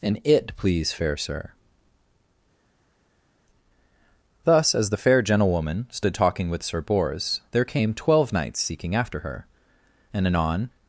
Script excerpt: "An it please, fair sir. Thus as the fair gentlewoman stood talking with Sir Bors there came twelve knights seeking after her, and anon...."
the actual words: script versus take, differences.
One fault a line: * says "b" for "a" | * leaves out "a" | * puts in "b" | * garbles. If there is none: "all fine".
all fine